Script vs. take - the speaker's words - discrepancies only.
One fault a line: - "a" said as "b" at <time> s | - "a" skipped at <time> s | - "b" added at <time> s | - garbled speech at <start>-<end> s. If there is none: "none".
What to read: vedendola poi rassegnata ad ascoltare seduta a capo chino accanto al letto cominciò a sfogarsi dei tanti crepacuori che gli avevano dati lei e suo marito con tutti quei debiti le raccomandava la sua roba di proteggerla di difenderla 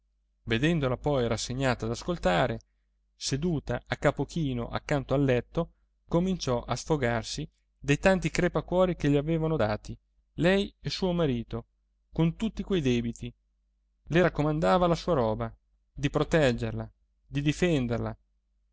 none